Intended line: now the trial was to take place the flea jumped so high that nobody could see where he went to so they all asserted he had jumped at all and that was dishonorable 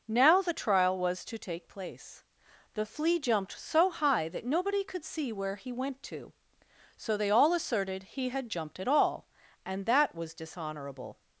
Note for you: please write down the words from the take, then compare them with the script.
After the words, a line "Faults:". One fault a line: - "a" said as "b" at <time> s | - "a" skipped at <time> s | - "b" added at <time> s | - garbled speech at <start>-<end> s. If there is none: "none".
now the trial was to take place the flea jumped so high that nobody could see where he went to so they all asserted he had jumped at all and that was dishonorable
Faults:
none